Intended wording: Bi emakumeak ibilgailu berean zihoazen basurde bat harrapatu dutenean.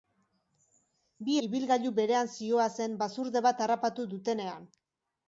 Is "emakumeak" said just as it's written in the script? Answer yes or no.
no